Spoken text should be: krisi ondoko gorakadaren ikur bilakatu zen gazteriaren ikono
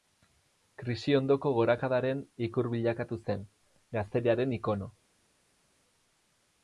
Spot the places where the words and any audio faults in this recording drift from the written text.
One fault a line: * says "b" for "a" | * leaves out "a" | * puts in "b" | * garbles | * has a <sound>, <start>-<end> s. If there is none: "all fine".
all fine